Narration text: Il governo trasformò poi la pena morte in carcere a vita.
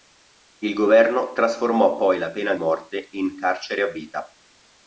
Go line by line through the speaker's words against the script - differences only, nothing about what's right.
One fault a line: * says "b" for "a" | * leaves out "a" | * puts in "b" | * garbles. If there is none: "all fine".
all fine